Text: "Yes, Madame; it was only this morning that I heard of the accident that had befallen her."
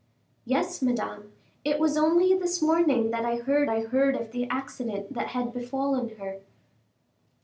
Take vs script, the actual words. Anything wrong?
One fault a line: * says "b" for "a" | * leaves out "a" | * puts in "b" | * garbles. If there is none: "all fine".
* puts in "I heard"